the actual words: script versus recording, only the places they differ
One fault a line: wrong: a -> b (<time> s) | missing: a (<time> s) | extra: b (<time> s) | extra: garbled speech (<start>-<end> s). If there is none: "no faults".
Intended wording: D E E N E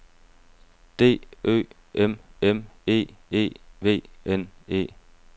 extra: Ø M M (1.4 s)
extra: V (3.8 s)